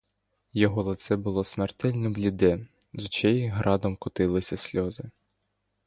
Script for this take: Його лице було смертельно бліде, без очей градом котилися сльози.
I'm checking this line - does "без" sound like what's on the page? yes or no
no